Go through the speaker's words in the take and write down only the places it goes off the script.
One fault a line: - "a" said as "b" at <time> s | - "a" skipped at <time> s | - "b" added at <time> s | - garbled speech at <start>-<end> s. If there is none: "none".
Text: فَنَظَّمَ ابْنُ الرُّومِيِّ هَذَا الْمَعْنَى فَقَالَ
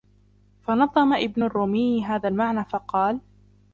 none